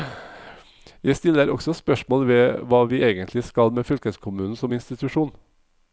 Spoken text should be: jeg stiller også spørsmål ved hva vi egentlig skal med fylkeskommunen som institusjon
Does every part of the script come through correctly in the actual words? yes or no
yes